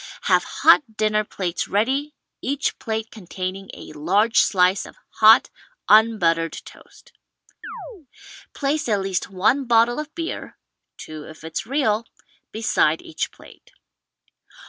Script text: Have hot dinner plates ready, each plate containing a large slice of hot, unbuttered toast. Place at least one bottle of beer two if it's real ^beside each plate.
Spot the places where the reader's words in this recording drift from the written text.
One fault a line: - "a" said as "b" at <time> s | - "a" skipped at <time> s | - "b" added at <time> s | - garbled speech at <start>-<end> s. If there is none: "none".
none